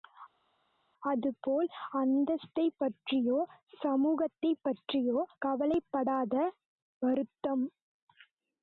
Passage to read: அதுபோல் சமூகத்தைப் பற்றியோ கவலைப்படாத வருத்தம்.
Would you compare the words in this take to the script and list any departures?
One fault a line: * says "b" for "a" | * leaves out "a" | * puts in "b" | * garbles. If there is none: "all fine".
* puts in "அந்தஸ்தைப் பற்றியோ"